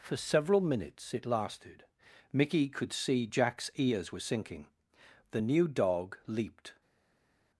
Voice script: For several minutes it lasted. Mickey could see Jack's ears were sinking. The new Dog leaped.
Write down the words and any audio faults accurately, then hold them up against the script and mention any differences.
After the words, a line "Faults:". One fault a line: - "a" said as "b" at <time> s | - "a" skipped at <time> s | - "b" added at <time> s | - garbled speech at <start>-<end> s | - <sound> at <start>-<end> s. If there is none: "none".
For several minutes it lasted. Mickey could see Jack's ears were sinking. The new Dog leaped.
Faults:
none